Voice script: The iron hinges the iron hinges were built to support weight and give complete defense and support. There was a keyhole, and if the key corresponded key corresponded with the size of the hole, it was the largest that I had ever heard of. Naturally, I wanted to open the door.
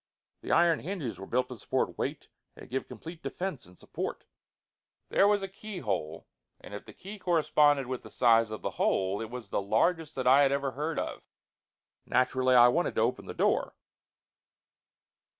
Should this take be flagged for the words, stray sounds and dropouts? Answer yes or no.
yes